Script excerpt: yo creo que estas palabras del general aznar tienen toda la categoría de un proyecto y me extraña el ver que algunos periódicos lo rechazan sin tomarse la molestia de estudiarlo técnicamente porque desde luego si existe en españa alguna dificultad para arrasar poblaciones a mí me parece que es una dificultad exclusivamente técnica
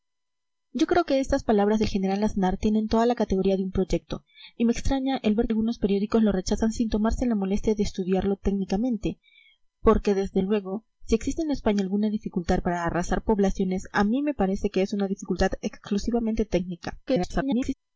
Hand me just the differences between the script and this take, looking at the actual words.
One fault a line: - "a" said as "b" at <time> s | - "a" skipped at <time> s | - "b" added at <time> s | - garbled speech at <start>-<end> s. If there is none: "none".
- "que" skipped at 5.5 s
- garbled speech at 17.1-17.7 s